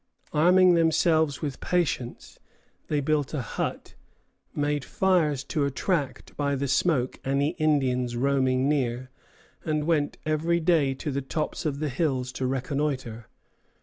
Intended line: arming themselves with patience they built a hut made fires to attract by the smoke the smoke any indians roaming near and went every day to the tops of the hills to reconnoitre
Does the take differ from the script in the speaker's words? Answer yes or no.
yes